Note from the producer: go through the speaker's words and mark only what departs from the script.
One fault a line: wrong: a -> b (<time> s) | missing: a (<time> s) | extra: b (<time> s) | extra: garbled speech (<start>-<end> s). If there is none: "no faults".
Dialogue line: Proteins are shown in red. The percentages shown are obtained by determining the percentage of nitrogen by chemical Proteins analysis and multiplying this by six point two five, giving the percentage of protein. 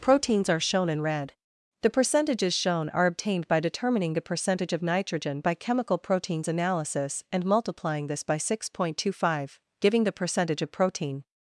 no faults